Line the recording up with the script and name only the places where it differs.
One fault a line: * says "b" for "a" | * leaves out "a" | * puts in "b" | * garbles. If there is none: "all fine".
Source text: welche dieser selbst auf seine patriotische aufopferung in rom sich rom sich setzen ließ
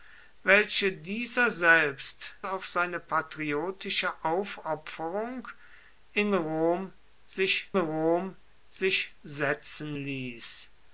all fine